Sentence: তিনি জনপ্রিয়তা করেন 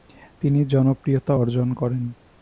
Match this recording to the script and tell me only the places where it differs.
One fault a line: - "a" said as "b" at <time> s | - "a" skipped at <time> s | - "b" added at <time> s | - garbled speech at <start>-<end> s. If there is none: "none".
- "অর্জন" added at 1.3 s